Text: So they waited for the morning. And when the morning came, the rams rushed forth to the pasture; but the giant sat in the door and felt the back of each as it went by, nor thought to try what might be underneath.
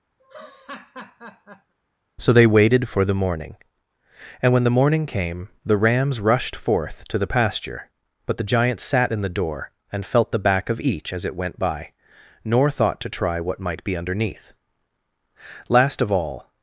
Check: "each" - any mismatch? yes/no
no